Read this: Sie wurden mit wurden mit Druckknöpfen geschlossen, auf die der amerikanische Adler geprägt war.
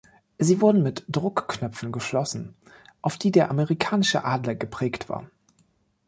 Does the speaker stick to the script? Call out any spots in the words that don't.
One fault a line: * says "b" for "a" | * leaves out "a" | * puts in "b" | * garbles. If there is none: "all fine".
* leaves out "wurden mit"